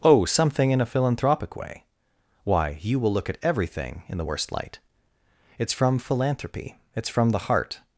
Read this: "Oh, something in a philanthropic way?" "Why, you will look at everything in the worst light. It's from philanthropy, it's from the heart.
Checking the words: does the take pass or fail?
pass